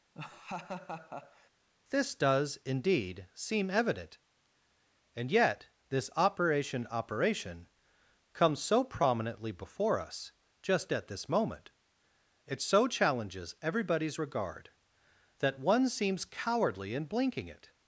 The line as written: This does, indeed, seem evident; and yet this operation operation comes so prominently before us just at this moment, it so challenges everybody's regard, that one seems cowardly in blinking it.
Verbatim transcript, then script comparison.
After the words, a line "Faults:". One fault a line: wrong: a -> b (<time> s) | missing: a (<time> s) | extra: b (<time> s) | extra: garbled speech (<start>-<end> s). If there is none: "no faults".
This does, indeed, seem evident; and yet this operation operation comes so prominently before us just at this moment, it so challenges everybody's regard, that one seems cowardly in blinking it.
Faults:
no faults